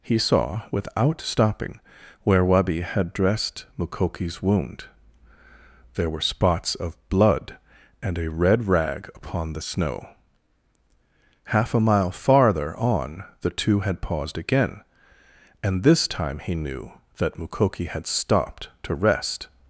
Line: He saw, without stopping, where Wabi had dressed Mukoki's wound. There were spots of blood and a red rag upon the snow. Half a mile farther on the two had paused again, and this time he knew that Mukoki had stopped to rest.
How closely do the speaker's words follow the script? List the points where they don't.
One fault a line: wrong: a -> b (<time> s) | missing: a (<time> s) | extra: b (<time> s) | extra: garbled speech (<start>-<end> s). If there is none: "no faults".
no faults